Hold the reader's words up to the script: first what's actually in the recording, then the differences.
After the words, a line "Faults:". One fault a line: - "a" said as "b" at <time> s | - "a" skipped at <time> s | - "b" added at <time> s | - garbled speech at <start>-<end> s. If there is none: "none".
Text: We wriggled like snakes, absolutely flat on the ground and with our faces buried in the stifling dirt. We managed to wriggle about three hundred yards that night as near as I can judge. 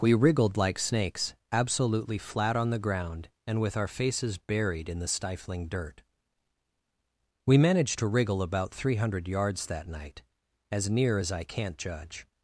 We wriggled like snakes, absolutely flat on the ground and with our faces buried in the stifling dirt. We managed to wriggle about three hundred yards that night as near as I can't judge.
Faults:
- "can" said as "can't" at 11.4 s